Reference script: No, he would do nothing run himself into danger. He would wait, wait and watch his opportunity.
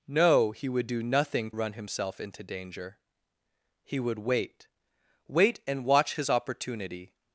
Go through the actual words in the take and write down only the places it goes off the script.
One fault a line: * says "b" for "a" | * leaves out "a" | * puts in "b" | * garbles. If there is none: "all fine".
all fine